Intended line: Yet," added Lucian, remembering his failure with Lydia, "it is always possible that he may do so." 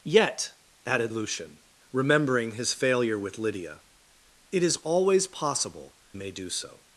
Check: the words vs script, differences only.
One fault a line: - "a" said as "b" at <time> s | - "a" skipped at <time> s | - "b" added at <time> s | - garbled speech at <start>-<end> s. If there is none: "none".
- "that he" skipped at 6.0 s